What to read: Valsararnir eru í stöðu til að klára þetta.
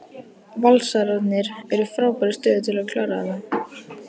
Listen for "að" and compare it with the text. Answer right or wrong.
right